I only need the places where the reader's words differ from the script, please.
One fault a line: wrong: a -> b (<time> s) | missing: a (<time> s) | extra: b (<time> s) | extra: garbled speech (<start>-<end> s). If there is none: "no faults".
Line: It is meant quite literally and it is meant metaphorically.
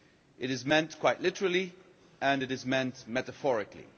no faults